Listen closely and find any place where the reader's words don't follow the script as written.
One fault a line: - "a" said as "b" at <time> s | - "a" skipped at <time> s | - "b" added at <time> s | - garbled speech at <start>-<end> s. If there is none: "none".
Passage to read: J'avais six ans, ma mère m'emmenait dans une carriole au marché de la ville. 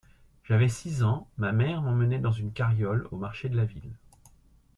none